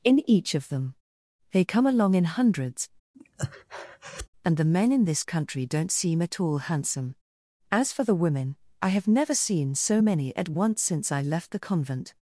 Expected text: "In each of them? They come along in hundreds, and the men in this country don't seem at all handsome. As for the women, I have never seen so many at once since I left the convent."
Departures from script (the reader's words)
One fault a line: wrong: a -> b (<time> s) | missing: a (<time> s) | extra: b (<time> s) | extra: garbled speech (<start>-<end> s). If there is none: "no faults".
no faults